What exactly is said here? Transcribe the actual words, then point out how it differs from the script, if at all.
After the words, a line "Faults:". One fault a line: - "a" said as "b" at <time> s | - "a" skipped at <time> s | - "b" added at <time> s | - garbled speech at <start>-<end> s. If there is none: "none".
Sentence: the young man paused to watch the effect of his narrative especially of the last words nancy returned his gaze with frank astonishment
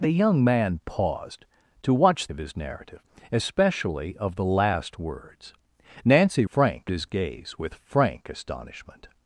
the young man paused to watch of his narrative especially of the last words nancy frank his gaze with frank astonishment
Faults:
- "the effect" skipped at 2.3 s
- "returned" said as "frank" at 6.5 s